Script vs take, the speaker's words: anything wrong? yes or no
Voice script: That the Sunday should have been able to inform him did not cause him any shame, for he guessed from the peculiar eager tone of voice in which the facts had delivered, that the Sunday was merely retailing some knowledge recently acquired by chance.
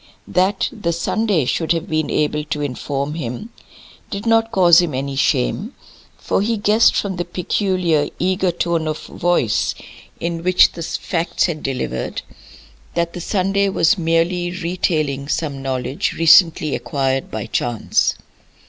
no